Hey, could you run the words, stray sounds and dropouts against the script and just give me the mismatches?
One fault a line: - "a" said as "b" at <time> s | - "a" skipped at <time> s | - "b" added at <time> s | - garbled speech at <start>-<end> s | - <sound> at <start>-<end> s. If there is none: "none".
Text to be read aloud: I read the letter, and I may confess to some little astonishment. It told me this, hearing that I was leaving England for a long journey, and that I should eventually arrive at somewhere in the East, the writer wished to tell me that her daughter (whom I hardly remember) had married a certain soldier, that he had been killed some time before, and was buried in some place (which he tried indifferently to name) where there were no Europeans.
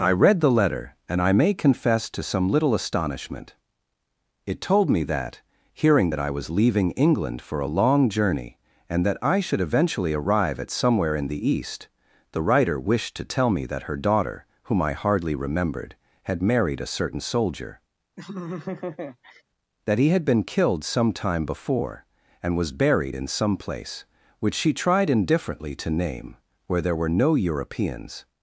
- "this" said as "that" at 5.0 s
- "remember" said as "remembered" at 15.3 s
- laugh at 18.2-19.4 s
- "he" said as "she" at 24.5 s